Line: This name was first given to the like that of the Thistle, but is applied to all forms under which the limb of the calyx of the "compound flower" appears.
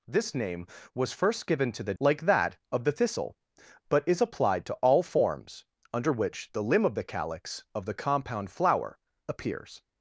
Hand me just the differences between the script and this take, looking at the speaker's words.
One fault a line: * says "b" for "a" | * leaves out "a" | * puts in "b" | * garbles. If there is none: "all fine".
all fine